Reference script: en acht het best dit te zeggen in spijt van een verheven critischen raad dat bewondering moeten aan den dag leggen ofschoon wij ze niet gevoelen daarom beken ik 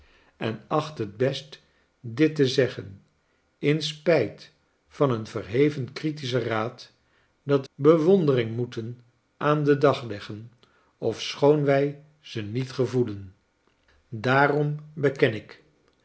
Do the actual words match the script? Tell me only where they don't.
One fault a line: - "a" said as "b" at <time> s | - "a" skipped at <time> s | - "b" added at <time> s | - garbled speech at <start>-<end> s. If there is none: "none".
none